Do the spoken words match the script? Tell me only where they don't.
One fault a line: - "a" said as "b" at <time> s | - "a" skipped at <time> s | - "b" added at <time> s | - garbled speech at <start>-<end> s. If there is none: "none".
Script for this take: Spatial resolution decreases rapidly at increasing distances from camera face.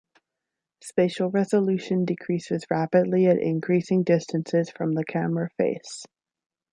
- "the" added at 4.9 s